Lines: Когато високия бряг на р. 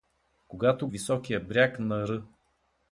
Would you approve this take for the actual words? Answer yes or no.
yes